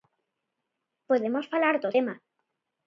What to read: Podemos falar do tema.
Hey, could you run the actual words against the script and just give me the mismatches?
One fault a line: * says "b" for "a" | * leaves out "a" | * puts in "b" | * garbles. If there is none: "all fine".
all fine